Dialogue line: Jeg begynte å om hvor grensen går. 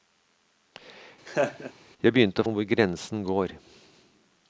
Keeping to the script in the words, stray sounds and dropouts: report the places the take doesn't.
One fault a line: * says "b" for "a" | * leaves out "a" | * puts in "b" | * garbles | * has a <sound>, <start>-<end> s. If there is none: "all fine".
* has a laugh, 1.3-1.7 s